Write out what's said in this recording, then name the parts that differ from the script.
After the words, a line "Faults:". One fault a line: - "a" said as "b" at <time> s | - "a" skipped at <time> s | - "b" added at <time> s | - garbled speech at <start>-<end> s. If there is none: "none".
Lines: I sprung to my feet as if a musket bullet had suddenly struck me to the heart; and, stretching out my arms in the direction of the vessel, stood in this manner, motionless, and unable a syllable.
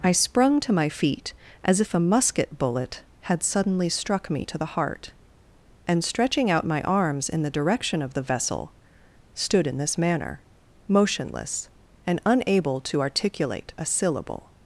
I sprung to my feet as if a musket bullet had suddenly struck me to the heart; and, stretching out my arms in the direction of the vessel, stood in this manner, motionless, and unable to articulate a syllable.
Faults:
- "to articulate" added at 12.8 s